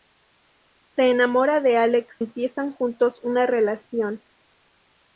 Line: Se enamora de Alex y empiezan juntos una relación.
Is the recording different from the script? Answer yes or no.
yes